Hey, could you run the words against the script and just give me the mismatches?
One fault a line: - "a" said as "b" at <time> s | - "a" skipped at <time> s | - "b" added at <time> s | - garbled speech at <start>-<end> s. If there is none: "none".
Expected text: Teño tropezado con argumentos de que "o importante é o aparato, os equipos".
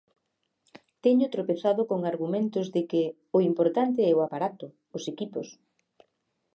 none